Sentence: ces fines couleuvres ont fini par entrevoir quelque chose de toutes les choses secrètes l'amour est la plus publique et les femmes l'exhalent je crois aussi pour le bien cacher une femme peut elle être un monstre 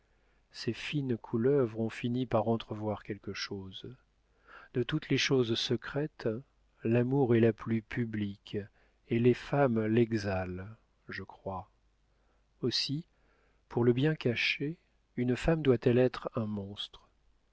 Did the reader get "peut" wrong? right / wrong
wrong